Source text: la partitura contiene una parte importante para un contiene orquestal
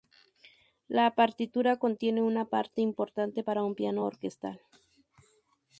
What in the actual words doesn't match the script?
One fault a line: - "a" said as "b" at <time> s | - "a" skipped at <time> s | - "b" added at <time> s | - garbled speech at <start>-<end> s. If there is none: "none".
- "contiene" said as "piano" at 3.7 s